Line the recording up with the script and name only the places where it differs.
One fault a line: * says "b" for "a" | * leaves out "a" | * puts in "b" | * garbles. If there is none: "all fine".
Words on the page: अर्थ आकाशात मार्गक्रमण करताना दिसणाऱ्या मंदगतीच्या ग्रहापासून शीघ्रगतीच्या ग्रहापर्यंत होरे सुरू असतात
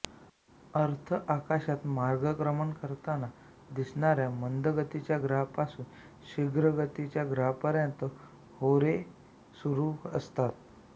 all fine